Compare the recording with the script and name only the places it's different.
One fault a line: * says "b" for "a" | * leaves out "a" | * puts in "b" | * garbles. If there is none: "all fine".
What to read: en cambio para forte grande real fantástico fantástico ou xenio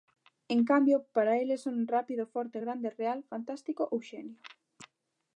* puts in "eles son rápido"
* leaves out "fantástico"